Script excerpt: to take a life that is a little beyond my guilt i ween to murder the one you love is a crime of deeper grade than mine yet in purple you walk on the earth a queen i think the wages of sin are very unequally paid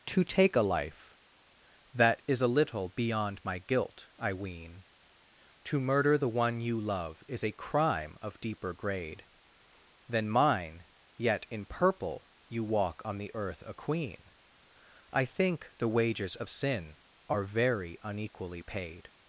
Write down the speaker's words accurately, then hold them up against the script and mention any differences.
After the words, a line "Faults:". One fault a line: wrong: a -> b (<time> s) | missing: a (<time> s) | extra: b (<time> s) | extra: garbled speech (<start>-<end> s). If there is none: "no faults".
to take a life that is a little beyond my guilt i ween to murder the one you love is a crime of deeper grade than mine yet in purple you walk on the earth a queen i think the wages of sin are very unequally paid
Faults:
no faults